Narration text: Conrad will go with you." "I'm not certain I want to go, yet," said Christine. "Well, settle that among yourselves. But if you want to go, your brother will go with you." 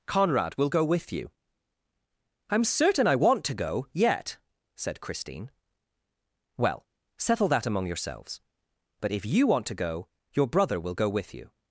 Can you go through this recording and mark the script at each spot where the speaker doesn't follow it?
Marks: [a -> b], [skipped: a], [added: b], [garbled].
Conrad will go with you." "I'm [skipped: not] certain I want to go, yet," said Christine. "Well, settle that among yourselves. But if you want to go, your brother will go with you."